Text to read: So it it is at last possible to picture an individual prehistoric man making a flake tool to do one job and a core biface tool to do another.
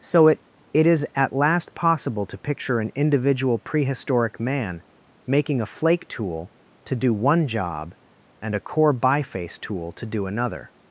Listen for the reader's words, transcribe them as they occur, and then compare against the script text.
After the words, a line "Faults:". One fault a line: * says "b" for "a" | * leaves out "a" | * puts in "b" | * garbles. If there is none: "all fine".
So it it is at last possible to picture an individual prehistoric man making a flake tool to do one job and a core biface tool to do another.
Faults:
all fine